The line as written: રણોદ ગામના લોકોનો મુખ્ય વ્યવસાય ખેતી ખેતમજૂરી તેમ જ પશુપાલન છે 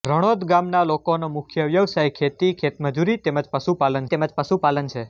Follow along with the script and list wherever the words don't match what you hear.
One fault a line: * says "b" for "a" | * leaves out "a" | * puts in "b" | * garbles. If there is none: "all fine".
* puts in "તેમ જ પશુપાલન"